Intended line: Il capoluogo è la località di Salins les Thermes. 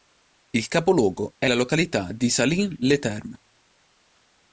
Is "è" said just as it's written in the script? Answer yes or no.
yes